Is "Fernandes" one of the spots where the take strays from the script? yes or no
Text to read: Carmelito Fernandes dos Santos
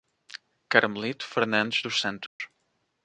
no